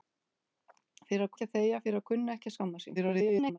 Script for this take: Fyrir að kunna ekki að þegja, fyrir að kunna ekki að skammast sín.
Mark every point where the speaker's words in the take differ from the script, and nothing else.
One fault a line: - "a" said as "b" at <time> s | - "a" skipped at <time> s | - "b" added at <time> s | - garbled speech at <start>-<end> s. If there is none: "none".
- "kunna" skipped at 1.3 s
- garbled speech at 3.0-3.6 s